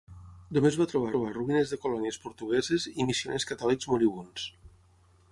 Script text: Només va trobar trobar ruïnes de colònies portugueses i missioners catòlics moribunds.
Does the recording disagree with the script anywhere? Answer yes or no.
no